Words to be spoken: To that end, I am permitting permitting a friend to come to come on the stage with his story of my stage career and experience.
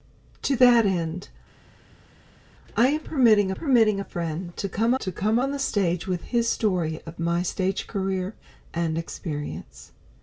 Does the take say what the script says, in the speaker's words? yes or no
yes